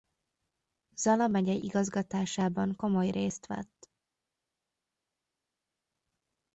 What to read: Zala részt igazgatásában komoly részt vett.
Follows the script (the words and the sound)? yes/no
no